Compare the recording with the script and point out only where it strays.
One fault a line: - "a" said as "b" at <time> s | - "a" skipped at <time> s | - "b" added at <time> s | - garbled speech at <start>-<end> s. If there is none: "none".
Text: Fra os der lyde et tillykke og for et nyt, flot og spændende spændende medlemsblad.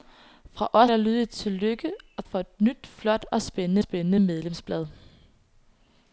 none